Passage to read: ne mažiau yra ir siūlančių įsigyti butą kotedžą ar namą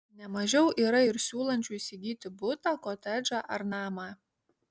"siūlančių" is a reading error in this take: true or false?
false